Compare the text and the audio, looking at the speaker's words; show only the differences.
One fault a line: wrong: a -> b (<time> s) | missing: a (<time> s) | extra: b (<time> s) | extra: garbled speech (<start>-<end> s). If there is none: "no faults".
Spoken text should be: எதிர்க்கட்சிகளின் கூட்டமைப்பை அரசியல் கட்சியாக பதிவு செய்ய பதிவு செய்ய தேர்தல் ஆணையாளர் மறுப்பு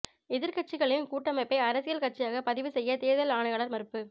missing: பதிவு செய்ய (3.0 s)